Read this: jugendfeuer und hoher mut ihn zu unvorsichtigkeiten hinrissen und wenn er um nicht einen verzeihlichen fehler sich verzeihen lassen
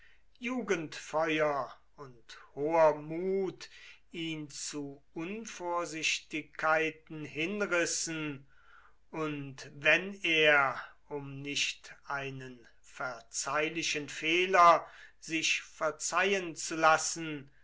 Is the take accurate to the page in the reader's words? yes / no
no